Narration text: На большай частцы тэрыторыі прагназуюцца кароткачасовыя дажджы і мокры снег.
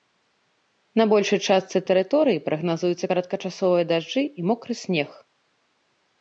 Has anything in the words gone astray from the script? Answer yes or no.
no